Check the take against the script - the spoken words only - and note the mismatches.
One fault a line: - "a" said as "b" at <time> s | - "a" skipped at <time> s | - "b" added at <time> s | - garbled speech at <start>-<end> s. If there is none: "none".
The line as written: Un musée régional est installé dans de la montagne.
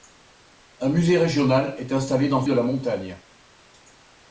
none